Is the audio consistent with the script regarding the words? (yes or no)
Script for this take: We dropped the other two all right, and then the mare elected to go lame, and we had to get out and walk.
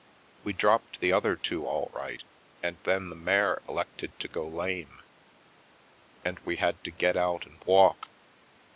yes